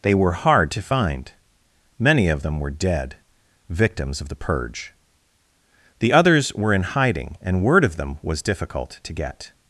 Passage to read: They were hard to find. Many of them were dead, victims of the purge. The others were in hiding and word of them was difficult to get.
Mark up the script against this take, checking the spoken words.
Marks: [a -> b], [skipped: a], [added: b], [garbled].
They were hard to find. Many of them were dead, victims of the purge. The others were in hiding and word of them was difficult to get.